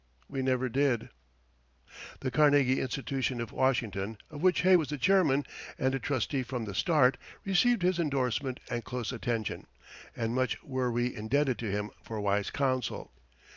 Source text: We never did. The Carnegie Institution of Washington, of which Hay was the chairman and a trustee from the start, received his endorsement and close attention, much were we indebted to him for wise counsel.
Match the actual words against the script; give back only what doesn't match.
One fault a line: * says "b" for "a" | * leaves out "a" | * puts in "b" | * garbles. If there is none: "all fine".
* puts in "and"